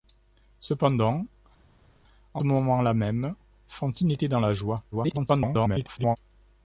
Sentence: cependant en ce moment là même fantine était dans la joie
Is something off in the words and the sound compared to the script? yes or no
yes